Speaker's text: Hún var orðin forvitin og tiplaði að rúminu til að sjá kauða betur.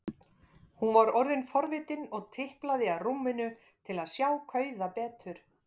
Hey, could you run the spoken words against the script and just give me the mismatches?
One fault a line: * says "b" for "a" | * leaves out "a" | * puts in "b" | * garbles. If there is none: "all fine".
all fine